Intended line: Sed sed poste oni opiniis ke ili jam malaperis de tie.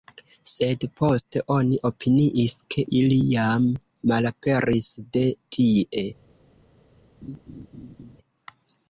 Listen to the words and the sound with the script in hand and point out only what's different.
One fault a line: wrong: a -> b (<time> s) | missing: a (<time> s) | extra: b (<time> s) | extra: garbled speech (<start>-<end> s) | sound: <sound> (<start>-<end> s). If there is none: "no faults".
missing: sed (0.9 s)
sound: laugh (7.2-8.2 s)